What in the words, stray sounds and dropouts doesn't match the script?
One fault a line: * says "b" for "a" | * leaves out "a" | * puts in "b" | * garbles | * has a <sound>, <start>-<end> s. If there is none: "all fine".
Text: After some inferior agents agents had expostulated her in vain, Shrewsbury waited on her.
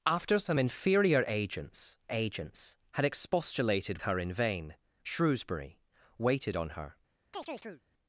* has a chirp, 7.3-7.8 s